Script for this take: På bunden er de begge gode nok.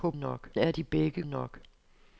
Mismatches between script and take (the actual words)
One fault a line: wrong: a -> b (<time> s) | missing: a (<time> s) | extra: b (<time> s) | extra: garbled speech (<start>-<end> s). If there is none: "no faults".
wrong: bunden -> nok (0.1 s)
missing: gode (1.2 s)